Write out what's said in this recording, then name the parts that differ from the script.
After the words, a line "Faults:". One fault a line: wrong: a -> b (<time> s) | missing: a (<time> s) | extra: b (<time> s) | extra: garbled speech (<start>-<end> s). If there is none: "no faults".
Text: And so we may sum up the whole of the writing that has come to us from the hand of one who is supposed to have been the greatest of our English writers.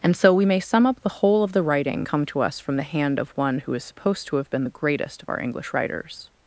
And so we may sum up the whole of the writing come to us from the hand of one who is supposed to have been the greatest of our English writers.
Faults:
missing: that has (2.0 s)